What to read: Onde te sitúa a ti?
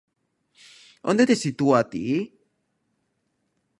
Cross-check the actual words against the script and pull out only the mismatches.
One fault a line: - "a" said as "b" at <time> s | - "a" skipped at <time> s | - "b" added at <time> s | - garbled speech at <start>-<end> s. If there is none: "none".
none